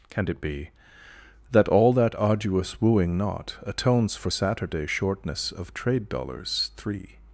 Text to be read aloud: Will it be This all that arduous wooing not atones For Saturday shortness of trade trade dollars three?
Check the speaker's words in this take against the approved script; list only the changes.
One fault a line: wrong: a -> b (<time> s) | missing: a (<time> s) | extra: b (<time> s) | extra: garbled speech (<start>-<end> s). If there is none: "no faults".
wrong: Will -> Can (0.1 s)
wrong: This -> That (1.5 s)
missing: trade (6.1 s)